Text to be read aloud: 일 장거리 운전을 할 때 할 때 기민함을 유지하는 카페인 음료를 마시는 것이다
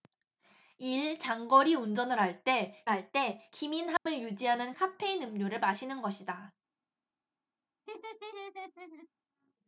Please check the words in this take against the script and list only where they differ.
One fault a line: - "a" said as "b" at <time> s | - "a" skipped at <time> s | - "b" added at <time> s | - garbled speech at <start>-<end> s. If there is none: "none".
none